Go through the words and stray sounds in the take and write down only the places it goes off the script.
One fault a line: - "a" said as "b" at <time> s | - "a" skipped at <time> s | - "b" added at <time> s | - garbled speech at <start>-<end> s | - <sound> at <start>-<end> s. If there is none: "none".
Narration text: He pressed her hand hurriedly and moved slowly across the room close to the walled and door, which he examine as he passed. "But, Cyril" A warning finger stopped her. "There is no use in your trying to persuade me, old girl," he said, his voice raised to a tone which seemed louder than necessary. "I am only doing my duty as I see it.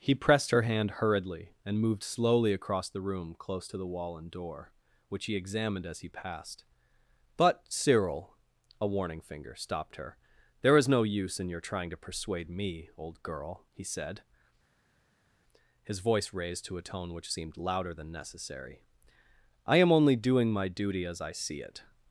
- "walled" said as "wall" at 3.9 s
- "examine" said as "examined" at 5.3 s